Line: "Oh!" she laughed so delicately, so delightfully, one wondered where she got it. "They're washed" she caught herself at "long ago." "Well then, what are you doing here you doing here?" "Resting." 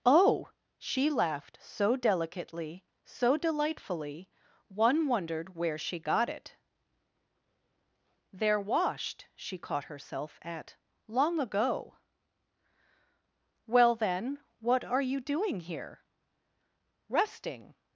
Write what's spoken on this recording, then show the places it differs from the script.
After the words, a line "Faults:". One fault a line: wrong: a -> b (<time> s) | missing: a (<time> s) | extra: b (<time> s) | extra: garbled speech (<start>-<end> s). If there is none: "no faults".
"Oh!" she laughed so delicately, so delightfully, one wondered where she got it. "They're washed" she caught herself at "long ago." "Well then, what are you doing here?" "Resting."
Faults:
missing: you doing here (16.0 s)